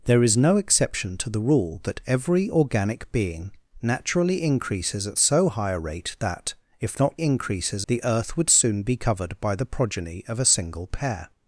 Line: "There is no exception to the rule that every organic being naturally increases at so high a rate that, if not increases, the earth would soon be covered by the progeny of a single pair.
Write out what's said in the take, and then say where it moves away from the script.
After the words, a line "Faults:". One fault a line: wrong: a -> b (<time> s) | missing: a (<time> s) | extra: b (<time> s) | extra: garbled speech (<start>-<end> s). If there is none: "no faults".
"There is no exception to the rule that every organic being naturally increases at so high a rate that, if not increases, the earth would soon be covered by the progeny of a single pair.
Faults:
no faults